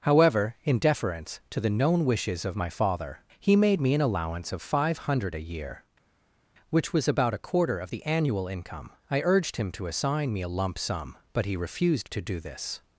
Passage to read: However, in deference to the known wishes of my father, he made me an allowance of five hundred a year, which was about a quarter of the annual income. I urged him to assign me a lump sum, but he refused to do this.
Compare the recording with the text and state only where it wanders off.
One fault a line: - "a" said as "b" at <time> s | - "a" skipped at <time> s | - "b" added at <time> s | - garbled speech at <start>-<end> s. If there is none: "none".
none